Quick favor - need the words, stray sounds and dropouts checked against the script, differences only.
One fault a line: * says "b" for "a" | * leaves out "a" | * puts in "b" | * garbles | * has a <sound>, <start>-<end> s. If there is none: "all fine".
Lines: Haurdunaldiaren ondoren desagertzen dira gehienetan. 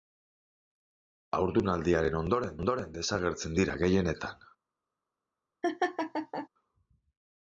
* puts in "ondoren"
* has a laugh, 5.6-6.5 s